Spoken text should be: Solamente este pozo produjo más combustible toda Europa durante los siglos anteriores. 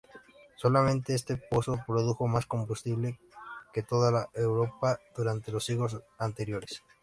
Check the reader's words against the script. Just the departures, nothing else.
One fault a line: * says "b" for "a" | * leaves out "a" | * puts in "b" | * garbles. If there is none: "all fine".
* puts in "que"